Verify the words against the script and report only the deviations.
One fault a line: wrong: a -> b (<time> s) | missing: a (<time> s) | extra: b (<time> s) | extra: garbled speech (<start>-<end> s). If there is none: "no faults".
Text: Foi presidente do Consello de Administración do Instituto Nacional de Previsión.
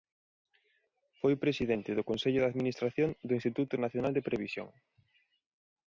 no faults